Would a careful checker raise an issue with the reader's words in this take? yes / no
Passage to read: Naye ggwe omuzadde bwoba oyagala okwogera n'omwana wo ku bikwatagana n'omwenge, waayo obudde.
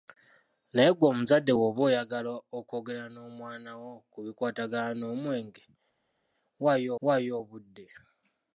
yes